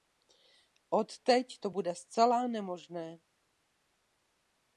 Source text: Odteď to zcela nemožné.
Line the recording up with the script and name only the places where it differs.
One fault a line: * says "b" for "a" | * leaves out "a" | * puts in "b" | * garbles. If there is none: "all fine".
* puts in "bude"